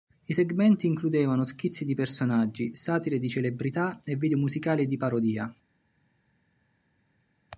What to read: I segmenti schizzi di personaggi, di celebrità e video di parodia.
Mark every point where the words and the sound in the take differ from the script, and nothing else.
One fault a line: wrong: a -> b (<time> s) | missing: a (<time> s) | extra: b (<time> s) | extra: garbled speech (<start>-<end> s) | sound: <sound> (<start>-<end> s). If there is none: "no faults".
extra: includevano (0.9 s)
extra: satire (2.7 s)
extra: musicali (4.4 s)